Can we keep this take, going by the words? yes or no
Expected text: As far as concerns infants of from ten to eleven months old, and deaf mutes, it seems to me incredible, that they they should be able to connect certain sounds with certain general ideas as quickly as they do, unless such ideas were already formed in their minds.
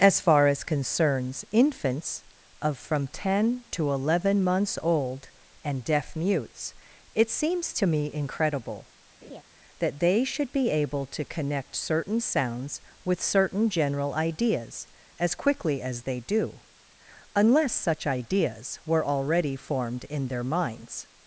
no